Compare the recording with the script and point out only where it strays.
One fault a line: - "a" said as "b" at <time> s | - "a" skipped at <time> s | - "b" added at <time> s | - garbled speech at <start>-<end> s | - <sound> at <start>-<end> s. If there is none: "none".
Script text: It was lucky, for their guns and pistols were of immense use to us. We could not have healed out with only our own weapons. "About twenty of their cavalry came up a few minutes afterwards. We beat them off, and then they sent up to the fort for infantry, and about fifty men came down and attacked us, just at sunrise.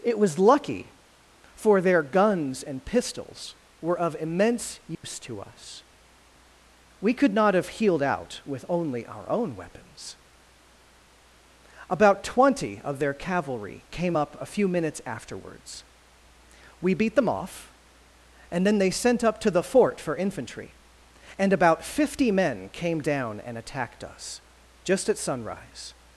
- dropout at 4.9-5.0 s